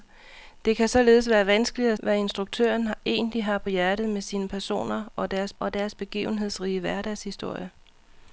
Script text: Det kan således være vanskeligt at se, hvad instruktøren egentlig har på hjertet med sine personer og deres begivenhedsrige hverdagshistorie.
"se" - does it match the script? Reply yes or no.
no